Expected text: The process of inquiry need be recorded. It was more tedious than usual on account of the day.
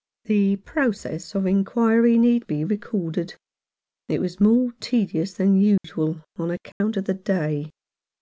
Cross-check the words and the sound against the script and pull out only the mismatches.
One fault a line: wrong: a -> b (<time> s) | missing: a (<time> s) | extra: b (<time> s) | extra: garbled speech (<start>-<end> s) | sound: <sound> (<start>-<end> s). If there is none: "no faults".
sound: dropout (5.8-5.8 s)
sound: dropout (6.7-6.8 s)